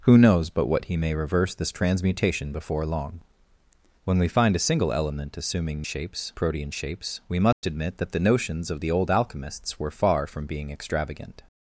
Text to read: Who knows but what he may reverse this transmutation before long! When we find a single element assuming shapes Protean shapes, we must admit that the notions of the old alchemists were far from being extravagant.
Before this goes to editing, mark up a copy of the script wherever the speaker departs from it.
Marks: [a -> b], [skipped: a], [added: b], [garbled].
Who knows but what he may reverse this transmutation before long! When we find a single element assuming shapes Protean shapes, we must admit that the notions of the old alchemists were far from being extravagant.